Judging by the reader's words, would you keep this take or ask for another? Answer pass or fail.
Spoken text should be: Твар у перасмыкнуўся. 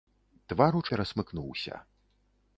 pass